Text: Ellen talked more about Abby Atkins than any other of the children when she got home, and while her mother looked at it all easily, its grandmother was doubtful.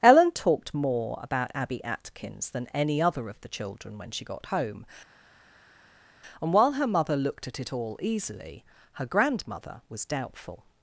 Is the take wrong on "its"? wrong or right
wrong